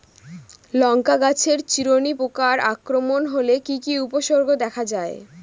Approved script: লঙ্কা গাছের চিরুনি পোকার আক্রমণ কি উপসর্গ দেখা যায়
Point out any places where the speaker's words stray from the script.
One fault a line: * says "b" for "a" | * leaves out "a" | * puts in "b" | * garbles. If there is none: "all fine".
* puts in "হলে কি"